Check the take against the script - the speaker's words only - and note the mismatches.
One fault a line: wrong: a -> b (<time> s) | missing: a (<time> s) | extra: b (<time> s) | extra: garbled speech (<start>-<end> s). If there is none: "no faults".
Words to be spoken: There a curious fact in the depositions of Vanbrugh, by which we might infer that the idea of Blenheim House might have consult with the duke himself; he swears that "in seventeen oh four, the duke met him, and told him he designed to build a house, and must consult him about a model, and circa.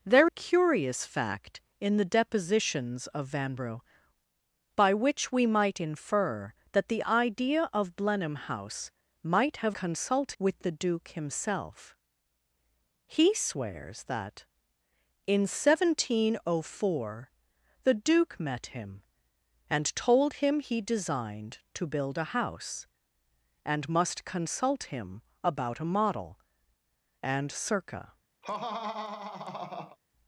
no faults